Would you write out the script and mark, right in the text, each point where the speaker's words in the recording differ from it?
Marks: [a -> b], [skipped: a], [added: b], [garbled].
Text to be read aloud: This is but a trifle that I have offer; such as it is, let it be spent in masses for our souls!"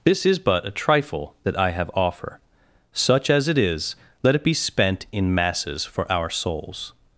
This is but a trifle that I have offer; such as it is, let it be spent in masses for our souls!"